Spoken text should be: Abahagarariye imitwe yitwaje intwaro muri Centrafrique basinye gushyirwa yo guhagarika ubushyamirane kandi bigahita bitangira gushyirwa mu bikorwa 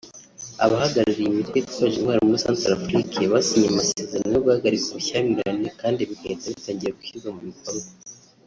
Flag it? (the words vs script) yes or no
yes